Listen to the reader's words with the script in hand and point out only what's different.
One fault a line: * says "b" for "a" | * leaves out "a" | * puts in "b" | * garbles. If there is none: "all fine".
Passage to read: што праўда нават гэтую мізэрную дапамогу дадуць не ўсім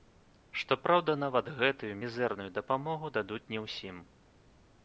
all fine